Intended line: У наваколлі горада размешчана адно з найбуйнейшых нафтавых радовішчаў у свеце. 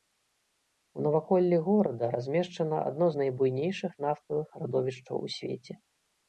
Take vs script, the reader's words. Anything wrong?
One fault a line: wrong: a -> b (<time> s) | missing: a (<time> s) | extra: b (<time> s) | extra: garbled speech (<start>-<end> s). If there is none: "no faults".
no faults